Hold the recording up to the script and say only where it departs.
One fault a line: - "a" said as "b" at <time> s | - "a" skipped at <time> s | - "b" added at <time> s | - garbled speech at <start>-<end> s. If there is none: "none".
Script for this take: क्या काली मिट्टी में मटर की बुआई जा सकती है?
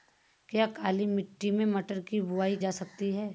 none